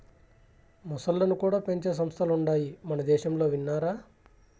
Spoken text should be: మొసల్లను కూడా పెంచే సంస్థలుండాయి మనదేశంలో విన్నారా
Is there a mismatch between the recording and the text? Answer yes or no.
no